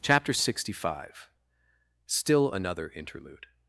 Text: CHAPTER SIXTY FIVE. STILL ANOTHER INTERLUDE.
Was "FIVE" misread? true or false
false